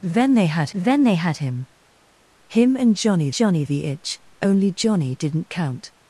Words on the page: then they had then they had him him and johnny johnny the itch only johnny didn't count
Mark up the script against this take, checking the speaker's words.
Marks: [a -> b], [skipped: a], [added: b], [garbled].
then they had then they had him him and johnny johnny the itch only johnny didn't count